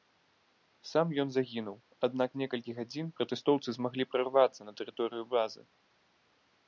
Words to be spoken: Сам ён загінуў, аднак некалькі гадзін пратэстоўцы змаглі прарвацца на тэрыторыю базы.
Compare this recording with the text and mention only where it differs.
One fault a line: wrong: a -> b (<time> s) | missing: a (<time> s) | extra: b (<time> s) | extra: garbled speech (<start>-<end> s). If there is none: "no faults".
no faults